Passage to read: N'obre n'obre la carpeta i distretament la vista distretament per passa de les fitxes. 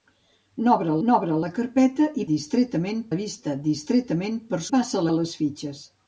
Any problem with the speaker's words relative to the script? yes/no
no